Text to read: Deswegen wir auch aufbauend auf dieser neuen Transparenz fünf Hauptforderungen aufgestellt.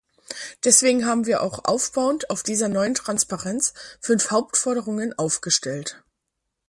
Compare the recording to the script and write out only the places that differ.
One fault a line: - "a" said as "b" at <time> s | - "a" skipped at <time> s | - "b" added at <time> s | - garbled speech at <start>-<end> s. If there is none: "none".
- "haben" added at 1.1 s